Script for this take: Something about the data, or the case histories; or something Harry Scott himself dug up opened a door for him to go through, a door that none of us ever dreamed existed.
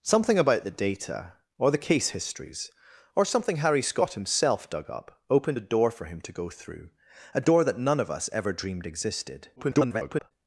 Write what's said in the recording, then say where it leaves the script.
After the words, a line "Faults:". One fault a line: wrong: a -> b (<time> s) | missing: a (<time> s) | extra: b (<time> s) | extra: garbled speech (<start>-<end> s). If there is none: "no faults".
Something about the data, or the case histories; or something Harry Scott himself dug up opened a door for him to go through, a door that none of us ever dreamed existed. [garbled]
Faults:
extra: garbled speech (9.6-10.3 s)